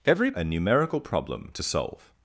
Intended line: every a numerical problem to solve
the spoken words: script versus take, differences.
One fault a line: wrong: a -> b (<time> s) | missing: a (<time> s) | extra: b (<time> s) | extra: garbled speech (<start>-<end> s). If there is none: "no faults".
no faults